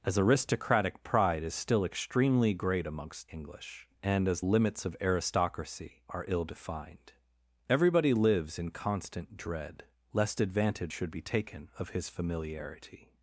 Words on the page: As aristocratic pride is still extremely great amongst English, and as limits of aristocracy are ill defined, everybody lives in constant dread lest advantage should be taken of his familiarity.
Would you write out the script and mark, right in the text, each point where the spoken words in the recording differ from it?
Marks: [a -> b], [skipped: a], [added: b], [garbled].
As aristocratic pride is still extremely great amongst English, and as limits of aristocracy are ill defined, everybody lives in constant dread lest advantage should be taken of his familiarity.